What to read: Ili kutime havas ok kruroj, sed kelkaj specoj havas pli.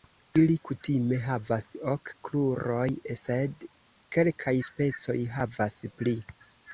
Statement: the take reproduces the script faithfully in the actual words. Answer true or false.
true